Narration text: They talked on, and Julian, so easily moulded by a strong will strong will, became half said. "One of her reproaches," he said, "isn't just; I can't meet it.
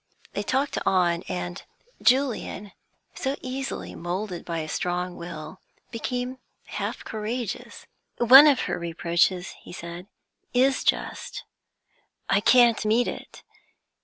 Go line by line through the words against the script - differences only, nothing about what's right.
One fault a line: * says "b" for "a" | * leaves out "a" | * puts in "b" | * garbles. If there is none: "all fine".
* leaves out "strong will"
* says "courageous" for "said"
* says "is" for "isn't"